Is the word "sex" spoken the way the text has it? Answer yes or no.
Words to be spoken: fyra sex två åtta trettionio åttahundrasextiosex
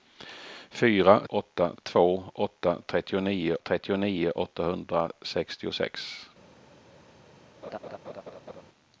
no